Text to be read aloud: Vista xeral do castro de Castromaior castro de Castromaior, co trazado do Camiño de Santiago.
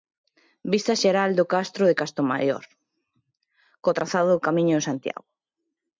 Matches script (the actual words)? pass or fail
fail